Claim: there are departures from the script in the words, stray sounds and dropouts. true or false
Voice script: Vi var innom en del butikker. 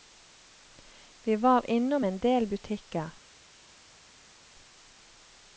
false